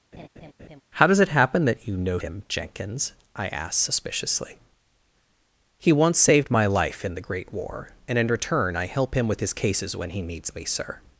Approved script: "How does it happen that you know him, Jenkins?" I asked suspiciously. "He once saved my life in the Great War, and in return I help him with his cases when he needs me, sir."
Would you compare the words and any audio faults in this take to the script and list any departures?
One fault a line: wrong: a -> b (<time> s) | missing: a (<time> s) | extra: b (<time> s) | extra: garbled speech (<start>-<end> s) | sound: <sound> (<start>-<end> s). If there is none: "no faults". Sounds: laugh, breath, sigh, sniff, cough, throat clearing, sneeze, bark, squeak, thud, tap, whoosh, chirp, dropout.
sound: laugh (0.1-0.8 s)